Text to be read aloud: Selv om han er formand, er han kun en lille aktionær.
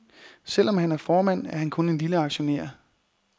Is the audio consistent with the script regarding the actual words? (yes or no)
yes